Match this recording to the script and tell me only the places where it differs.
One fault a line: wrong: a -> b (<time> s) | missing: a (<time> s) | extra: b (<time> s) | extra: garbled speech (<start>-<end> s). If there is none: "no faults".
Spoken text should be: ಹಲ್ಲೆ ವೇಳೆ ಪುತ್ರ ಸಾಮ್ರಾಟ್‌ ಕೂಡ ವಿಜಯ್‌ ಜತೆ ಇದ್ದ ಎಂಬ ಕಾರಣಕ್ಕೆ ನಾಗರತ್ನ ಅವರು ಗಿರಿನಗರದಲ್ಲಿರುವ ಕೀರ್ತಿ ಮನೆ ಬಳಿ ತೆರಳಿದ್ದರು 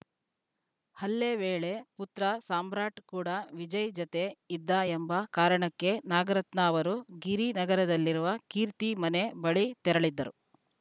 no faults